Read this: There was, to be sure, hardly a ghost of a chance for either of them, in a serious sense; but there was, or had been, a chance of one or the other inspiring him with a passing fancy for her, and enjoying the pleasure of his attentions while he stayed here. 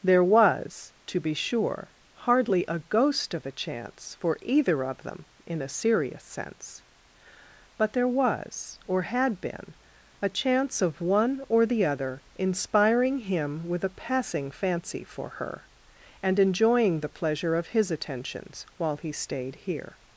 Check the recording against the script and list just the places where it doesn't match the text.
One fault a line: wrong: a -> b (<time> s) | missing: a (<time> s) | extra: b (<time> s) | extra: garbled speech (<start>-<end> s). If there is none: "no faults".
no faults